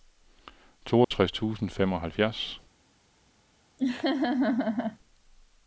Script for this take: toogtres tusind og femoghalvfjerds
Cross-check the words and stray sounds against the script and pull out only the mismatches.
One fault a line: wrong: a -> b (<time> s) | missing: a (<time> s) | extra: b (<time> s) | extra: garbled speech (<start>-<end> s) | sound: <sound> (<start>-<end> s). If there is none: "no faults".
sound: dropout (1.0-1.1 s)
sound: laugh (3.8-5.0 s)